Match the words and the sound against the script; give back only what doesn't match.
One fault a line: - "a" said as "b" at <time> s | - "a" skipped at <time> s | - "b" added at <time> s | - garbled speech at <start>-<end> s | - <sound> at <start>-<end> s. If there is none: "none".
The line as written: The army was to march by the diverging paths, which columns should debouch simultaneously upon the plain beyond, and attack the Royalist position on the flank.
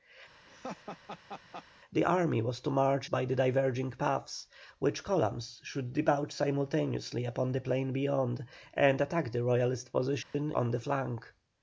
- laugh at 0.5-1.7 s
- dropout at 10.2-10.3 s